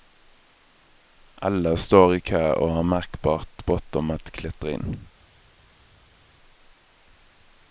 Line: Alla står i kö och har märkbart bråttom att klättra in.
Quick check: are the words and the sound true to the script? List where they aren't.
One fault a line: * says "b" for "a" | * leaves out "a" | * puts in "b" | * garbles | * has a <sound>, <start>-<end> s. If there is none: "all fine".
all fine